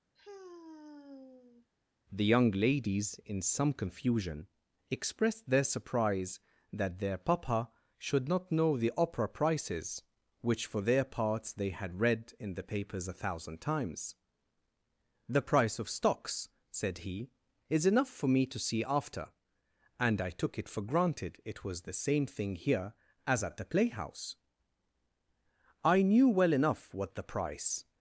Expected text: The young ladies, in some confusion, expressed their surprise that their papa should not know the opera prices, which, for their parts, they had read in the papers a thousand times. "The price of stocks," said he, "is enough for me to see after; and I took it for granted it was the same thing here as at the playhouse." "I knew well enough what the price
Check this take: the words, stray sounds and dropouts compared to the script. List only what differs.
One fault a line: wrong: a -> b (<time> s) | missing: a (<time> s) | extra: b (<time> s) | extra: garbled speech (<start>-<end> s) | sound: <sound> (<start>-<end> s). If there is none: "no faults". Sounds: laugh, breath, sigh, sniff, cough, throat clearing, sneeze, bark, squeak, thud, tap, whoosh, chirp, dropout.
sound: sigh (0.2-1.7 s)